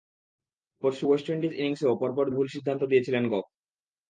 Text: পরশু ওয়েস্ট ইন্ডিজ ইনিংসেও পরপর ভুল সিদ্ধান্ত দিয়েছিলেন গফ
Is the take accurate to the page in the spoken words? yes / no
yes